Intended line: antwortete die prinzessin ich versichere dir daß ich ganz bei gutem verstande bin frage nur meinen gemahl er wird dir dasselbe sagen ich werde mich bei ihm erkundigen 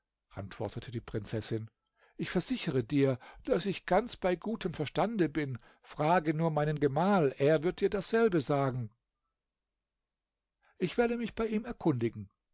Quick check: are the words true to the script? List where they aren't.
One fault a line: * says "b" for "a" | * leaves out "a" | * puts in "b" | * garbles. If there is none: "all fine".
all fine